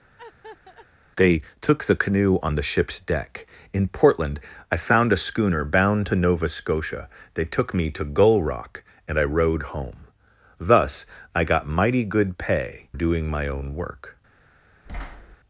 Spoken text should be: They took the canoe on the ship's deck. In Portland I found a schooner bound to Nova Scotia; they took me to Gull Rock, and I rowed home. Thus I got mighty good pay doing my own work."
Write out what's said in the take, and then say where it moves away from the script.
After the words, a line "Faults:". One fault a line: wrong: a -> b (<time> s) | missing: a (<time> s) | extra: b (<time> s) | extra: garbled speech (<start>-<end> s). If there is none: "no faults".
They took the canoe on the ship's deck. In Portland I found a schooner bound to Nova Scotia; they took me to Gull Rock, and I rowed home. Thus I got mighty good pay doing my own work."
Faults:
no faults